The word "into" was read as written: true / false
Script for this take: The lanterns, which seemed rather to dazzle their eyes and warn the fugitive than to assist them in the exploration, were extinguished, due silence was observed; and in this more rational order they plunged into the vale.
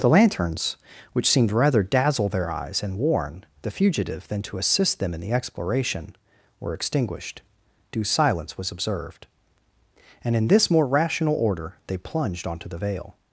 false